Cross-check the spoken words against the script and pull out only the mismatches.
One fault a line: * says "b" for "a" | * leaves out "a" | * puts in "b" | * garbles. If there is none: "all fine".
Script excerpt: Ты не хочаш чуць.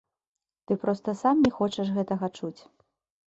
* puts in "проста сам"
* puts in "гэтага"